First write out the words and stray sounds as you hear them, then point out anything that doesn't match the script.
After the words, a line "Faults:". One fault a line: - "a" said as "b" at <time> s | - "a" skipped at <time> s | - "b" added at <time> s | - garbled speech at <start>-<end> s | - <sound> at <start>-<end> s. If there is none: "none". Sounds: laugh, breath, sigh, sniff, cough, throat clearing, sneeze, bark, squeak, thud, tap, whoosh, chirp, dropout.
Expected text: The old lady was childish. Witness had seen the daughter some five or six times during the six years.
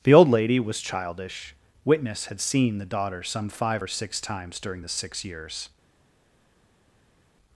The old lady was childish. Witness had seen the daughter some five or six times during the six years.
Faults:
none